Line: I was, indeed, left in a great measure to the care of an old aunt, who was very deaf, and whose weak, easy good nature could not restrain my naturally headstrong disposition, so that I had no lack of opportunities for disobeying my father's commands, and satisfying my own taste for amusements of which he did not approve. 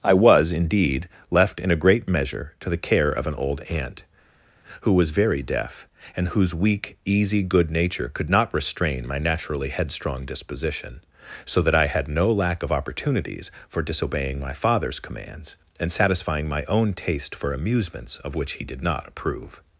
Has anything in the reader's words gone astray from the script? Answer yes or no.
no